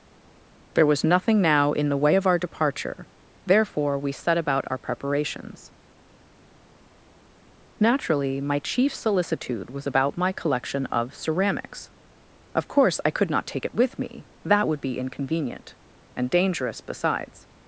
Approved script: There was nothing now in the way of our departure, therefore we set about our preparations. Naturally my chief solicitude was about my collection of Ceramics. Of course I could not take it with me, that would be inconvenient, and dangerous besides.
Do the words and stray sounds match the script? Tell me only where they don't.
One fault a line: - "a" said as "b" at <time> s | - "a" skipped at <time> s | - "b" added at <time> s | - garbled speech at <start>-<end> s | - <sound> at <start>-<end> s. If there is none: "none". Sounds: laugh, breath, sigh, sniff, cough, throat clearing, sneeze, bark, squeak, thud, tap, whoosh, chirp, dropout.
none